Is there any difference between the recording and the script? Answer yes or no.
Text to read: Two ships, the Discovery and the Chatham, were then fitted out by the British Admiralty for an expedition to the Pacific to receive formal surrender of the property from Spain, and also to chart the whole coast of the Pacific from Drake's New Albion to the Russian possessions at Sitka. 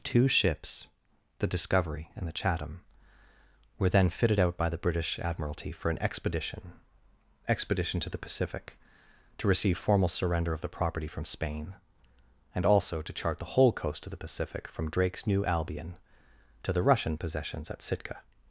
yes